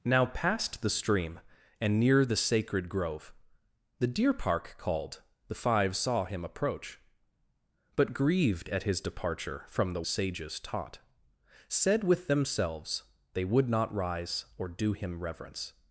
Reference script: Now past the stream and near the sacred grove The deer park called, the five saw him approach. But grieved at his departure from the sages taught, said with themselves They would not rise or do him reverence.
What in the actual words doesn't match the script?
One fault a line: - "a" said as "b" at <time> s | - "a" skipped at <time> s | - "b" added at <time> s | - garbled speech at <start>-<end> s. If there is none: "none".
none